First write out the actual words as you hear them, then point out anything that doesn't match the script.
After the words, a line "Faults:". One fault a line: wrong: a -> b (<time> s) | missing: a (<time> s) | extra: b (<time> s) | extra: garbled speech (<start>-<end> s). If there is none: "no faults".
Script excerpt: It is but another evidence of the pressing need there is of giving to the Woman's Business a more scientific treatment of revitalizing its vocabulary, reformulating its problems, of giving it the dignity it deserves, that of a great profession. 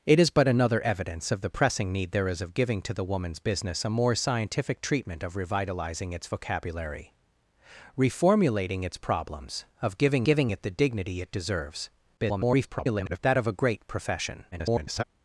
It is but another evidence of the pressing need there is of giving to the Woman's Business a more scientific treatment of revitalizing its vocabulary, reformulating its problems, of giving giving it the dignity it deserves, [garbled] that of a great profession. [garbled]
Faults:
extra: giving (10.2 s)
extra: garbled speech (12.2-13.2 s)
extra: garbled speech (14.5-15.0 s)